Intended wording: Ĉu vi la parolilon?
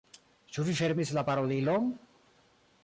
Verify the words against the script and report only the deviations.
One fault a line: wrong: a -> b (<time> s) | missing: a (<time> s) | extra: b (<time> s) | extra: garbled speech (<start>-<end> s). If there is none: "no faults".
extra: fermis (0.8 s)